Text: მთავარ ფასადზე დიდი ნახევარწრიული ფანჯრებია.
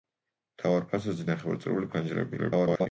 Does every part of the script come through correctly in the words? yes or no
no